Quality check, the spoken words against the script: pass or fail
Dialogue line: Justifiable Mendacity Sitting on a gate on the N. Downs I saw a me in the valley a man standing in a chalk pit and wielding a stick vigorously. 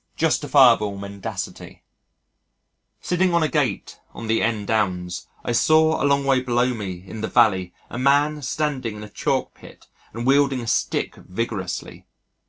fail